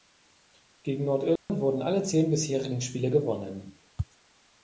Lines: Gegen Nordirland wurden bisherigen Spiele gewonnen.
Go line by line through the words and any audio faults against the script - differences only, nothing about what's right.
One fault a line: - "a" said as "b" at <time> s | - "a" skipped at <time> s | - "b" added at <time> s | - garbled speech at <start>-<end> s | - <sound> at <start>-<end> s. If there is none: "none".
- dropout at 1.4-1.5 s
- "alle zehn" added at 1.8 s